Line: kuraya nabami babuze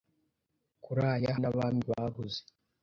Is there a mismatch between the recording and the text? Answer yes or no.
no